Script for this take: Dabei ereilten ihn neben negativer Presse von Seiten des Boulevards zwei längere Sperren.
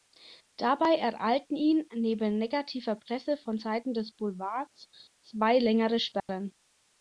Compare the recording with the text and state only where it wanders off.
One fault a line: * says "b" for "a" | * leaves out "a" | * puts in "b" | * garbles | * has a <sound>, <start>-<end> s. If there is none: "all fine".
* has a dropout, 6.2-6.3 s